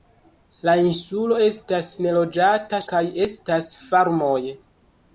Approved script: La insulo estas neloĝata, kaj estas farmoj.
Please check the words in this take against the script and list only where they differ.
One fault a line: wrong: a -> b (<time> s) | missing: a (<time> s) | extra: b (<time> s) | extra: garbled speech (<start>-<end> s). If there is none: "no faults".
no faults